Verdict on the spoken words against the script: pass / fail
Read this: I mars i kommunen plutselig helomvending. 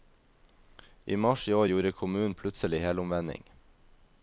fail